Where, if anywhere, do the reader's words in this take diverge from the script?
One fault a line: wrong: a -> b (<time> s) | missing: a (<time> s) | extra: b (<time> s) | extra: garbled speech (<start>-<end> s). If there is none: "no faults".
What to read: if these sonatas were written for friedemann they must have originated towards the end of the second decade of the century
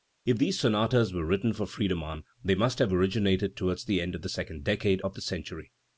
no faults